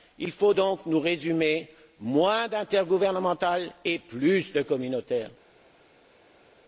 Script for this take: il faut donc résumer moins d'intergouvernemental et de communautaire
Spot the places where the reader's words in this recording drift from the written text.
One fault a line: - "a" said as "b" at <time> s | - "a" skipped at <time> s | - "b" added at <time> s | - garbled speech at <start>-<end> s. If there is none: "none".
- "nous" added at 0.9 s
- "plus" added at 4.0 s